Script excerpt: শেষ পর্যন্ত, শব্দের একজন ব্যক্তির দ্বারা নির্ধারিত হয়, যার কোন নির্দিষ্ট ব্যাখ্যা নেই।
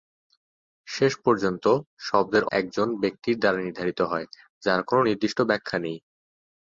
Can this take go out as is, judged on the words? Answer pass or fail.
pass